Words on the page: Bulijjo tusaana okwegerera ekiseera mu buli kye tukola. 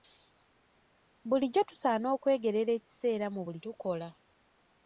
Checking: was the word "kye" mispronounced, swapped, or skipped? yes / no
yes